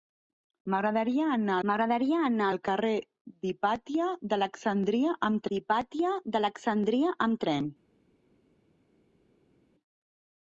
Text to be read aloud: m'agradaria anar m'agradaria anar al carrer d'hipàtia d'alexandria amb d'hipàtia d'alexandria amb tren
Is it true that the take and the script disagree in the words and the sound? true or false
false